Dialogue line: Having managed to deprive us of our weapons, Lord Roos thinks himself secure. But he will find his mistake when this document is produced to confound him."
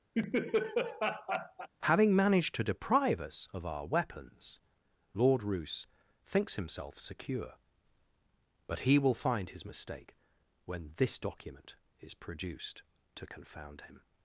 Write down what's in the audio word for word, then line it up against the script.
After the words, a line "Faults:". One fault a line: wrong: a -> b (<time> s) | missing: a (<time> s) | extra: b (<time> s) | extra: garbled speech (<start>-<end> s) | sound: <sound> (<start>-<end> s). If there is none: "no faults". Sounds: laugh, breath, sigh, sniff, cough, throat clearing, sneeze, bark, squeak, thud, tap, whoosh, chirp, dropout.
Having managed to deprive us of our weapons, Lord Roos thinks himself secure. But he will find his mistake when this document is produced to confound him."
Faults:
sound: laugh (0.1-1.7 s)